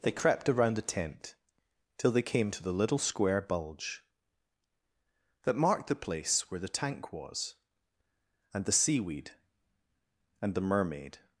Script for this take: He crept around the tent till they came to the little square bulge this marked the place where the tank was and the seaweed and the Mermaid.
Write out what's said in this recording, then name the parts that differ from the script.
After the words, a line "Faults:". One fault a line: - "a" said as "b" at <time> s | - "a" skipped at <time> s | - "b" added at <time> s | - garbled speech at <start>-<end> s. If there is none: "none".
They crept around the tent till they came to the little square bulge that marked the place where the tank was and the seaweed and the Mermaid.
Faults:
- "He" said as "They" at 0.0 s
- "this" said as "that" at 5.4 s